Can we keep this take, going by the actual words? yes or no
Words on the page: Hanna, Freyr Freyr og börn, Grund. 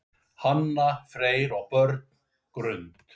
no